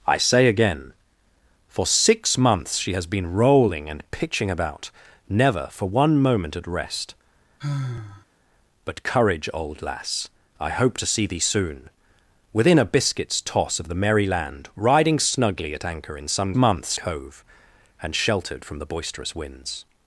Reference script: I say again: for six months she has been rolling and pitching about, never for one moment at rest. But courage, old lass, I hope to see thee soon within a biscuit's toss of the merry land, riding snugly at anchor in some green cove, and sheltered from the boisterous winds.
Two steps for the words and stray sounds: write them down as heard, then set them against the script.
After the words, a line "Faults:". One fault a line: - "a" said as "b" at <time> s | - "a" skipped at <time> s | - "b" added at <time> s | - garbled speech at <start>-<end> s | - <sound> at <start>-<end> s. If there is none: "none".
I say again: for six months she has been rolling and pitching about, never for one moment at rest. But courage, old lass, I hope to see thee soon within a biscuit's toss of the merry land, riding snugly at anchor in some months cove, and sheltered from the boisterous winds.
Faults:
- sigh at 7.6-8.3 s
- "green" said as "months" at 16.5 s